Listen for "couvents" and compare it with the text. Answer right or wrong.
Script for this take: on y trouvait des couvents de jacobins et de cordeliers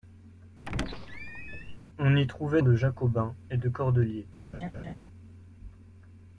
wrong